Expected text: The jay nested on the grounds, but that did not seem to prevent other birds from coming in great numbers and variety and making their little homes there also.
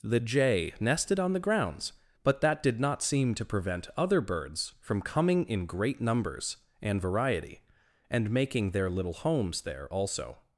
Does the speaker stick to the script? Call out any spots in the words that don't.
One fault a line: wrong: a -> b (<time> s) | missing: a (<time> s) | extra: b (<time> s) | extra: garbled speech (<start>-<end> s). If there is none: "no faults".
no faults